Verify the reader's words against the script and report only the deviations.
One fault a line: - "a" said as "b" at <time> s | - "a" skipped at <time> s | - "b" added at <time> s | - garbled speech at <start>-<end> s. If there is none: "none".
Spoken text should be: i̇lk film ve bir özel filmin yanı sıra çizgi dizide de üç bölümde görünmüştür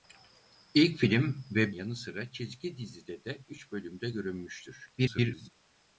- "bir özel filmin" skipped at 1.7 s
- garbled speech at 5.0-5.5 s